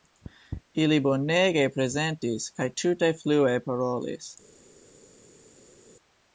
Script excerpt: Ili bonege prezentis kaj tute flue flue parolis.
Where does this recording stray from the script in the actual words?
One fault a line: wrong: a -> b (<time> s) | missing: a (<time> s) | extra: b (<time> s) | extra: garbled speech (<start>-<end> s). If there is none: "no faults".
missing: flue (3.6 s)